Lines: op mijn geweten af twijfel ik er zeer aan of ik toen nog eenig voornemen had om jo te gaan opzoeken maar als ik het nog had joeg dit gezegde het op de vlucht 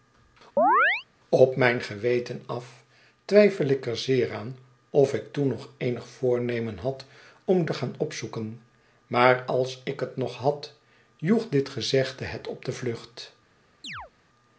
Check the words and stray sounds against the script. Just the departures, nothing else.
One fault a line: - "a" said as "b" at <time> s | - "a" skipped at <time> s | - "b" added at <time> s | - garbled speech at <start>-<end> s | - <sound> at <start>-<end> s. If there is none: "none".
- chirp at 0.6-1.0 s
- "jo" skipped at 7.6 s
- chirp at 13.8-14.1 s